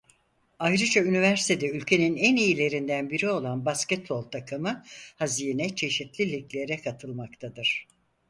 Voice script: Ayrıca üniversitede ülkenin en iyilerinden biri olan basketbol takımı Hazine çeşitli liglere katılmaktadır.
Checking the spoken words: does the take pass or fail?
pass